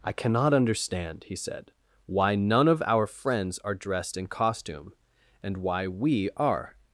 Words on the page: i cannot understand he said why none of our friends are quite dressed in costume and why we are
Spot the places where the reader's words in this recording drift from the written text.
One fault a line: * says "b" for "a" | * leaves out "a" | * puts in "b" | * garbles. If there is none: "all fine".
* leaves out "quite"